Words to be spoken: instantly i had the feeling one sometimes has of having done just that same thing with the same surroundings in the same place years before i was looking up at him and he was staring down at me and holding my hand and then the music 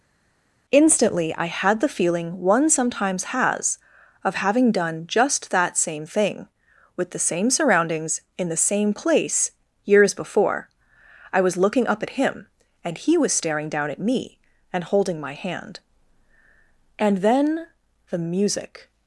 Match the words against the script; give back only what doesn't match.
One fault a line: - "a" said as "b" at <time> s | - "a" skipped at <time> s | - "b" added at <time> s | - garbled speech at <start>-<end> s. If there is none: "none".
none